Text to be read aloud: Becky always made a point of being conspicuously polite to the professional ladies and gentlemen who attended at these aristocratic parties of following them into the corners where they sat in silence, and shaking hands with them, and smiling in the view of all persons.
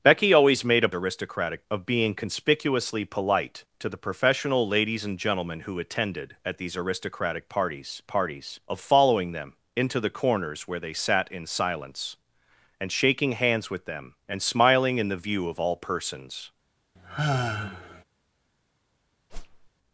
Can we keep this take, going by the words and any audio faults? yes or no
no